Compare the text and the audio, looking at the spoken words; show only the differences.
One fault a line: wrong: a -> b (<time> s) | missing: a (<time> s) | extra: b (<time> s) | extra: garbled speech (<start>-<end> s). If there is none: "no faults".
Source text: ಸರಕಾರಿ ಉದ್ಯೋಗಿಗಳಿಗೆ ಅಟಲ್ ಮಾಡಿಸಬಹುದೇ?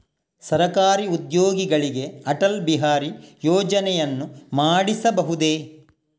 extra: ಬಿಹಾರಿ ಯೋಜನೆಯನ್ನು (2.6 s)